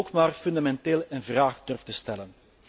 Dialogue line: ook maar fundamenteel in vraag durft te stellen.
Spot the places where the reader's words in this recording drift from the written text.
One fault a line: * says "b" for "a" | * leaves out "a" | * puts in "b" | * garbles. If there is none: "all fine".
all fine